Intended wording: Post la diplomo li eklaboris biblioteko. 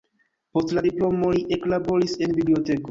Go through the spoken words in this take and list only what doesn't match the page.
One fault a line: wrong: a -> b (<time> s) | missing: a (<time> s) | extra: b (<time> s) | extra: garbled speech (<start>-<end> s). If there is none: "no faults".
extra: en (2.3 s)